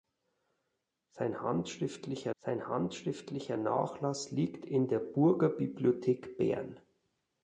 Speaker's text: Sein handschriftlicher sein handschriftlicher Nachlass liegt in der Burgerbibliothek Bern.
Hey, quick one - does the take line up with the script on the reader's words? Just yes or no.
yes